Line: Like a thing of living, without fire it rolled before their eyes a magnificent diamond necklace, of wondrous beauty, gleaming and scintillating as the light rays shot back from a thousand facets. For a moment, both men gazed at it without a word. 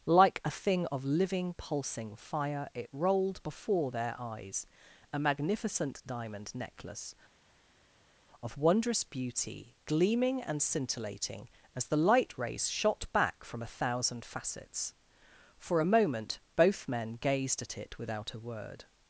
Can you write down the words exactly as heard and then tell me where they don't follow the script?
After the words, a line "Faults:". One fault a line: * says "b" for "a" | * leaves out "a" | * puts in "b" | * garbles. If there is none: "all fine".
Like a thing of living, pulsing fire it rolled before their eyes a magnificent diamond necklace, of wondrous beauty, gleaming and scintillating as the light rays shot back from a thousand facets. For a moment, both men gazed at it without a word.
Faults:
* says "pulsing" for "without"